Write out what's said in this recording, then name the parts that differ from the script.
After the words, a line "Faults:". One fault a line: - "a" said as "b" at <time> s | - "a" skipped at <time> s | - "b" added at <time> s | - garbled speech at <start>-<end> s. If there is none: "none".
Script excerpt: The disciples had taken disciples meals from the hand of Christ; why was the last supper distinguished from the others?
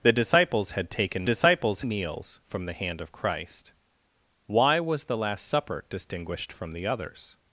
The disciples had taken disciples meals from the hand of Christ; why was the last supper distinguished from the others?
Faults:
none